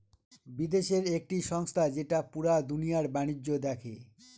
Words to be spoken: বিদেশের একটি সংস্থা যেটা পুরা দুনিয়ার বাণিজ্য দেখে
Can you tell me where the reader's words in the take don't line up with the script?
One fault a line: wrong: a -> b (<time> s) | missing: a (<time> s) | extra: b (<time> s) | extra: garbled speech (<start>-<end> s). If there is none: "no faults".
no faults